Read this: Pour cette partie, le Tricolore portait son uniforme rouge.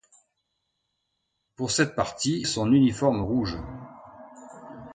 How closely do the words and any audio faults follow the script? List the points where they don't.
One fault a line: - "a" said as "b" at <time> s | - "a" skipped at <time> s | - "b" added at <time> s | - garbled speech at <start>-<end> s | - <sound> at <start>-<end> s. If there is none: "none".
- "le Tricolore portait" skipped at 2.5 s